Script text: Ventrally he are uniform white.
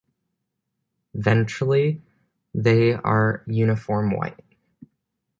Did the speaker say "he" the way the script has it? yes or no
no